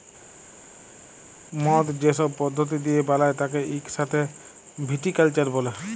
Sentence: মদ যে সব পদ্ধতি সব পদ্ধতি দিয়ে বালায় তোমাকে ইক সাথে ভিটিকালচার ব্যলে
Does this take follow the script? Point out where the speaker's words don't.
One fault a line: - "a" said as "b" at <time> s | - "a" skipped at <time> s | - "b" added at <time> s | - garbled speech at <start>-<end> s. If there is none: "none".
- "সব পদ্ধতি" skipped at 2.8 s
- "তোমাকে" said as "তাকে" at 3.4 s